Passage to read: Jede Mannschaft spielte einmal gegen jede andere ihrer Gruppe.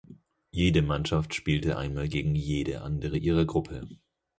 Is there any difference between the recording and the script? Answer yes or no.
no